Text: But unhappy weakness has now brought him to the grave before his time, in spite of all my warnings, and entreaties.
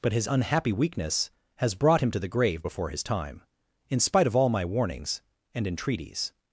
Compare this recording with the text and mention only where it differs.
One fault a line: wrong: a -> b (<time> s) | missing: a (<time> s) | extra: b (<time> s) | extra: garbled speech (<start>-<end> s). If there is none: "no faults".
extra: his (0.1 s)
missing: now (1.7 s)